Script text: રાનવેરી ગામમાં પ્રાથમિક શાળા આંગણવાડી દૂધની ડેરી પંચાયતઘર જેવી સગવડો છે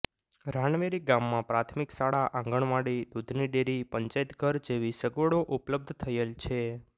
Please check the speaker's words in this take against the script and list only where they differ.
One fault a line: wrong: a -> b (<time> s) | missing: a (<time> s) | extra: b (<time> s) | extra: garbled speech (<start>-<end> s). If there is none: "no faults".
extra: ઉપલબ્ધ થયેલ (5.6 s)